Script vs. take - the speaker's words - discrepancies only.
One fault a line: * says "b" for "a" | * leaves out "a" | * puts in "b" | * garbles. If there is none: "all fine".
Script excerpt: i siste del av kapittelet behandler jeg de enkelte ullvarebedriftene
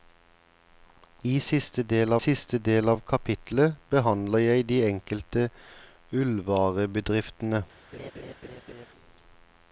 * puts in "siste del"